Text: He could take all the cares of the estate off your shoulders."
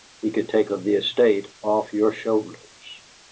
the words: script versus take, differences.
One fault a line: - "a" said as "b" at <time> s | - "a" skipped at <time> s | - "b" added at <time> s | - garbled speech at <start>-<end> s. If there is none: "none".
- "all the cares" skipped at 0.7 s